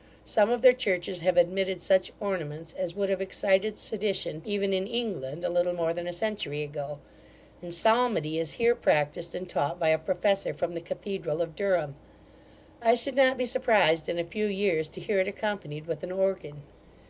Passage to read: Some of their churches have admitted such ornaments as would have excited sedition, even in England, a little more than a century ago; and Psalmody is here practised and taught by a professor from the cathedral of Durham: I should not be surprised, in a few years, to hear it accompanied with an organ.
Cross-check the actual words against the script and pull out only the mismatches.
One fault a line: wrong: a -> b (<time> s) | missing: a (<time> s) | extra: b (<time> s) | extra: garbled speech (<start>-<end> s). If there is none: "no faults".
no faults